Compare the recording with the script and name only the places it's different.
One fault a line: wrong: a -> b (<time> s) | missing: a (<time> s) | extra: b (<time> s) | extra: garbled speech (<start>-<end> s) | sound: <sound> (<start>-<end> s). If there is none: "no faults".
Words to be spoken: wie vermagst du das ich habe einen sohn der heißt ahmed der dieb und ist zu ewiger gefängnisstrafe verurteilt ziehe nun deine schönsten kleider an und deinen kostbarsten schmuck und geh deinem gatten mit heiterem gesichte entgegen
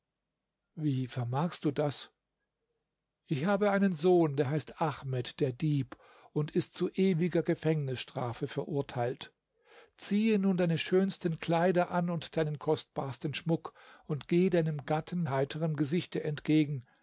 missing: mit (15.2 s)